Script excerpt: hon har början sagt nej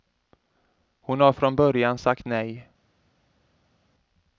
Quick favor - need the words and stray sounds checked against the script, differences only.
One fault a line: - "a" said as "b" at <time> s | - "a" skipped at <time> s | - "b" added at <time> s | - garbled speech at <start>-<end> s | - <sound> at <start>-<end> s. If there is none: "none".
- "från" added at 1.3 s